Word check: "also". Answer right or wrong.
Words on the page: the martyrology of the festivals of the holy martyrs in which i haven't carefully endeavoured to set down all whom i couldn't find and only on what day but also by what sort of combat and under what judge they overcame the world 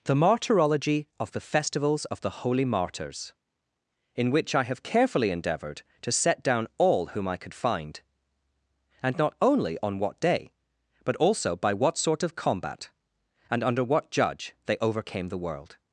right